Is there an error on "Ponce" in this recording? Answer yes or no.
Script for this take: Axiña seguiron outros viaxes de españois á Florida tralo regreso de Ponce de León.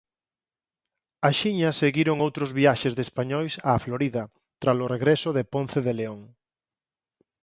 no